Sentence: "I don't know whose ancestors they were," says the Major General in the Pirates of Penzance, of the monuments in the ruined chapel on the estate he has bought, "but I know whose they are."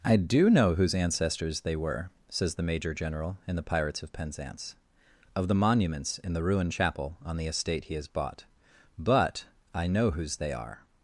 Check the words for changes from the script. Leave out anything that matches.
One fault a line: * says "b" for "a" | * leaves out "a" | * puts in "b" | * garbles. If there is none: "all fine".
* says "do" for "don't"